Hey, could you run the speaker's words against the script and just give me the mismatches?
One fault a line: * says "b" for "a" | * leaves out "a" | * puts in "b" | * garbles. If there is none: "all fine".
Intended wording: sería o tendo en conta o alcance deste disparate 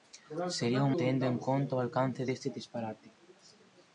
all fine